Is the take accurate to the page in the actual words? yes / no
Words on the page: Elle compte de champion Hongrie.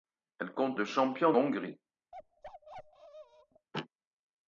yes